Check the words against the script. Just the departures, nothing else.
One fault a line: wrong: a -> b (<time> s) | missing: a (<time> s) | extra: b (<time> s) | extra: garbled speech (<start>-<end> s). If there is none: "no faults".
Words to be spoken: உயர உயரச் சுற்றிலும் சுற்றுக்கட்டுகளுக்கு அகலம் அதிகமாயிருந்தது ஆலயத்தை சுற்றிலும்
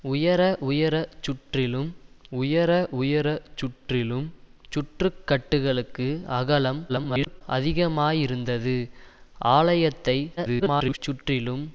extra: உயர உயரச் சுற்றிலும் (2.3 s)
extra: garbled speech (6.9-7.4 s)
extra: garbled speech (10.4-11.0 s)